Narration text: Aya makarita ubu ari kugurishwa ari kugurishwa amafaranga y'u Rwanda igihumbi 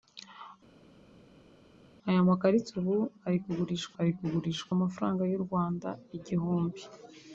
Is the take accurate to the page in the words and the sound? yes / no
yes